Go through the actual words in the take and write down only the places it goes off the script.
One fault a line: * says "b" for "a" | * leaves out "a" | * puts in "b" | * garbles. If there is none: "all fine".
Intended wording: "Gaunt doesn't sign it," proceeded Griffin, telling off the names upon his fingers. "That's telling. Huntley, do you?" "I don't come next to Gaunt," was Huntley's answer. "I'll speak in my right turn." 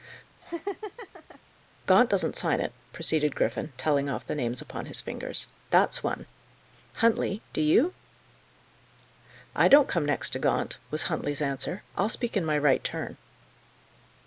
* says "one" for "telling"